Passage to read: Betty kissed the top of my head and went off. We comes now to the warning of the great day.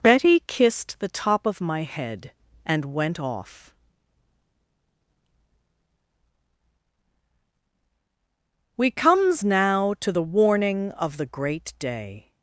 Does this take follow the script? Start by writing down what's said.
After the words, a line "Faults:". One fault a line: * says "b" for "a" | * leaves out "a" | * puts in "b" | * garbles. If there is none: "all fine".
Betty kissed the top of my head and went off. We comes now to the warning of the great day.
Faults:
all fine